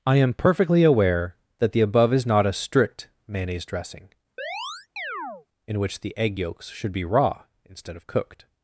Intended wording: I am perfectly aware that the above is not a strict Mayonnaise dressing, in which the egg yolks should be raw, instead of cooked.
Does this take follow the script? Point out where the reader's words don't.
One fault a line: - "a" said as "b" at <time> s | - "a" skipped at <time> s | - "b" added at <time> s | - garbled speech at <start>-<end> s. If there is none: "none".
none